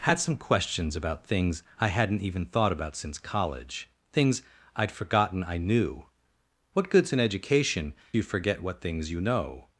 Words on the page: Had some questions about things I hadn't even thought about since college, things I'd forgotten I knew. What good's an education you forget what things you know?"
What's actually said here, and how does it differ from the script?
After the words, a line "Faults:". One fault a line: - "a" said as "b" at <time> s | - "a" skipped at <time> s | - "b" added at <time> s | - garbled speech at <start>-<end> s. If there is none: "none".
Had some questions about things I hadn't even thought about since college, things I'd forgotten I knew. What good's an education you forget what things you know?"
Faults:
none